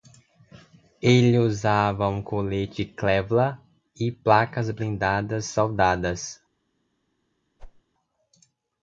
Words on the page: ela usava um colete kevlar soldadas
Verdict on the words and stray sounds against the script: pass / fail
fail